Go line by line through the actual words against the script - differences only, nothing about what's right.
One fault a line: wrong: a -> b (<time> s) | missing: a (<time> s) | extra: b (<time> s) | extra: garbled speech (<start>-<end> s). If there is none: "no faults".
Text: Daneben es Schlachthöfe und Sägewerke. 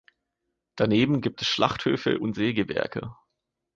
extra: gibt (1.2 s)